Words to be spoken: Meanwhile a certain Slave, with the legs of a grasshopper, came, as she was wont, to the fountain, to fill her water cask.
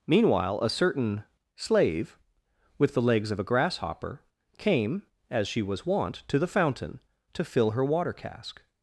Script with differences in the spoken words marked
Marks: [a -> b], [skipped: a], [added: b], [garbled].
Meanwhile a certain Slave, with the legs of a grasshopper, came, as she was wont, to the fountain, to fill her water cask.